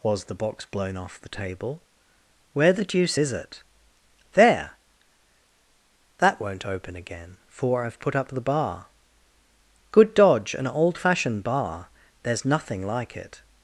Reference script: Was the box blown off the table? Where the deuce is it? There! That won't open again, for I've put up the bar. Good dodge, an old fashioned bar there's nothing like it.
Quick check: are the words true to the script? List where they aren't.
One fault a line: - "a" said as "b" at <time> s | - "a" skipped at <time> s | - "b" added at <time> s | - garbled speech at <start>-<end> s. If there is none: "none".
none